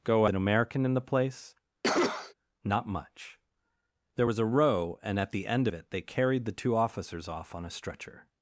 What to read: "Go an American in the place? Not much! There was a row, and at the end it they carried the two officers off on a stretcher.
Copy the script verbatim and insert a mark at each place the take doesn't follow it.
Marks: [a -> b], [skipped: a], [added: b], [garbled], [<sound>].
"Go an American in the place? [cough] Not much! There was a row, and at the end it they carried the two officers off on a stretcher.